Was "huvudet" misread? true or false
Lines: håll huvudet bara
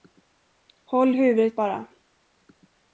false